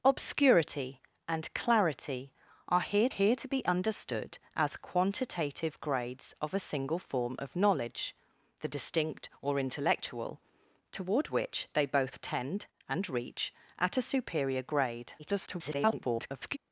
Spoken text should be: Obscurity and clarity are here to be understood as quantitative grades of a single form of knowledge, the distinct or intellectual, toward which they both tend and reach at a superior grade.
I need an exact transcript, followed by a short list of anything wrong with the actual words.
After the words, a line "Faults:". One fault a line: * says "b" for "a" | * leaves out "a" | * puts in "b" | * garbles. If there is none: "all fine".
Obscurity and clarity are here here to be understood as quantitative grades of a single form of knowledge, the distinct or intellectual, toward which they both tend and reach at a superior grade. [garbled]
Faults:
* puts in "here"
* garbles